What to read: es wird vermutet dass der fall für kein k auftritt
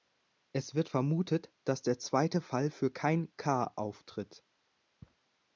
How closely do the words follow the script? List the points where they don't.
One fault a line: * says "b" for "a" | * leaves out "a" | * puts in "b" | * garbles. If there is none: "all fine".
* puts in "zweite"